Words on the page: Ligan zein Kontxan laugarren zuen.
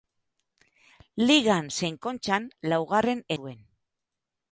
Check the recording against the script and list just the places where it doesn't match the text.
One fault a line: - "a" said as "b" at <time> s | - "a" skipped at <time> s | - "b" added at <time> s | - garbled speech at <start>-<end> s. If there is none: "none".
none